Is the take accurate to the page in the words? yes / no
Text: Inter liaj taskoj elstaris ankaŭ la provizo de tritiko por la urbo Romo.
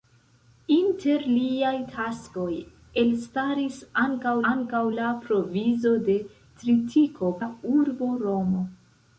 no